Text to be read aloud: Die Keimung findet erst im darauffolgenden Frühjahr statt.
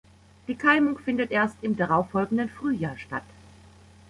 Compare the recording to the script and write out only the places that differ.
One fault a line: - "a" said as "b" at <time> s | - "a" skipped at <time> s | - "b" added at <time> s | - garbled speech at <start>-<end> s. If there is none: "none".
none